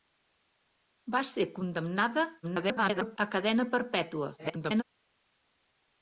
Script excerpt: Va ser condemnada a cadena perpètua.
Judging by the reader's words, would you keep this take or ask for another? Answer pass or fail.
fail